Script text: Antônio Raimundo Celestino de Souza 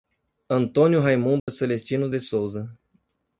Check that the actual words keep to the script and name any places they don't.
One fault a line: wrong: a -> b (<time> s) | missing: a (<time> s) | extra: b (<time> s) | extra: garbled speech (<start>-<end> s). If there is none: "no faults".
no faults